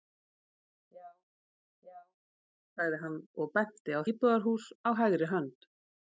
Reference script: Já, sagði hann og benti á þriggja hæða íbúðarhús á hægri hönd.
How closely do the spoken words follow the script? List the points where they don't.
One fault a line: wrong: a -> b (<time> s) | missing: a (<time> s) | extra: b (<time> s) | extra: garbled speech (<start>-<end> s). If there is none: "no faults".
extra: já (1.9 s)
missing: þriggja hæða (4.0 s)